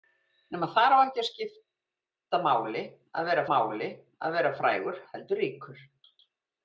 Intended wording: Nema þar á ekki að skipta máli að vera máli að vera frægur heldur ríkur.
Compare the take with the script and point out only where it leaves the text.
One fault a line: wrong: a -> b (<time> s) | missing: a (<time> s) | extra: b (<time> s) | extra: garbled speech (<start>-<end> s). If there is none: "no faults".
no faults